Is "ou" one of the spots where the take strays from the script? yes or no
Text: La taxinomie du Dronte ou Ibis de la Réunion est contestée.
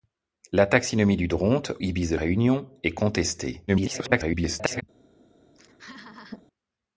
yes